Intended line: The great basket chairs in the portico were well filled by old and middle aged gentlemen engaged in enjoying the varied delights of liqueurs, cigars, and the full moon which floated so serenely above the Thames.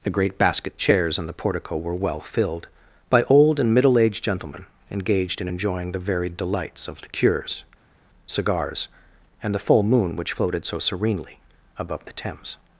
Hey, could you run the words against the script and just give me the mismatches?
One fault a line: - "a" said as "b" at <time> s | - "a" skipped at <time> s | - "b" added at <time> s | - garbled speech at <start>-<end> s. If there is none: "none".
none